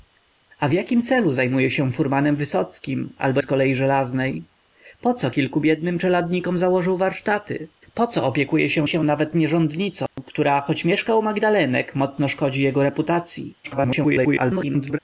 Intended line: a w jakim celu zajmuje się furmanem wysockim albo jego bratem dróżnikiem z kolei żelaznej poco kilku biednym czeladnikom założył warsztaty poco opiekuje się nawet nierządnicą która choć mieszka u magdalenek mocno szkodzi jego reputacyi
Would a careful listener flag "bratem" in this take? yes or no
yes